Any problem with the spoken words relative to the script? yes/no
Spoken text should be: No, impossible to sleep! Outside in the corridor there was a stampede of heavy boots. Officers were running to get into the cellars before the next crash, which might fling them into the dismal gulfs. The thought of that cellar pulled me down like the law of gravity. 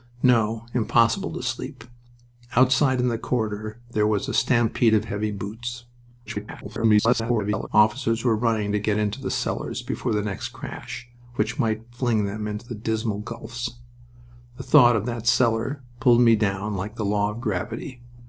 yes